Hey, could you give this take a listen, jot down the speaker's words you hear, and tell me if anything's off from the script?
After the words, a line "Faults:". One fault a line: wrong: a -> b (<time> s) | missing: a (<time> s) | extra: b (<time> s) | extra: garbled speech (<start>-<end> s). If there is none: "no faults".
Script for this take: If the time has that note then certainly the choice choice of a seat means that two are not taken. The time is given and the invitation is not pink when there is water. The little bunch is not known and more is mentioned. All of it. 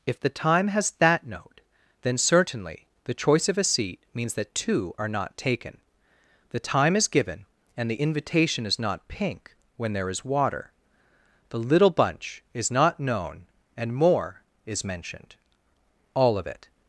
If the time has that note then certainly the choice of a seat means that two are not taken. The time is given and the invitation is not pink when there is water. The little bunch is not known and more is mentioned. All of it.
Faults:
missing: choice (3.5 s)